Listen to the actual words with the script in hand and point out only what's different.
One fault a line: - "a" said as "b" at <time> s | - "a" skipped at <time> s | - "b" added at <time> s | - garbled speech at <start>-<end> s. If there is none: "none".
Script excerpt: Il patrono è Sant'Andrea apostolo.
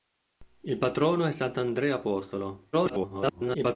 - garbled speech at 2.7-3.8 s